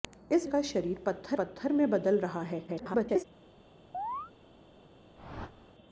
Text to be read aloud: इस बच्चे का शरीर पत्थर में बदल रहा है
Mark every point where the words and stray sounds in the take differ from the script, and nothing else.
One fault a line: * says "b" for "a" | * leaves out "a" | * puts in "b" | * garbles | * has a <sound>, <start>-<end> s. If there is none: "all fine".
* leaves out "बच्चे"
* puts in "पत्थर"
* garbles
* has a chirp, 3.9-4.3 s
* has a whoosh, 5.1-5.7 s